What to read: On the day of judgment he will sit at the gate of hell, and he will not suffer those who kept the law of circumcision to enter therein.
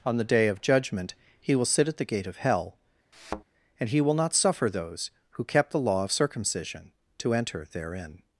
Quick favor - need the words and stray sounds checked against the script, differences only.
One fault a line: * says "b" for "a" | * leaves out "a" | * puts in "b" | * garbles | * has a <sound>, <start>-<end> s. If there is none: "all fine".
* has a thud, 3.1-3.4 s